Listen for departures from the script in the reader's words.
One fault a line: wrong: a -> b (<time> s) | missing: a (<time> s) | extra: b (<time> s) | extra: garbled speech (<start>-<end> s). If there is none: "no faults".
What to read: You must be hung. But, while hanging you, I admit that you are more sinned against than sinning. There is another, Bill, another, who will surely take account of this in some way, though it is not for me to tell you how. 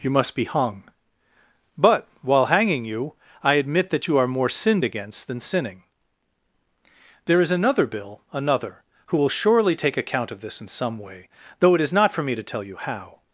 no faults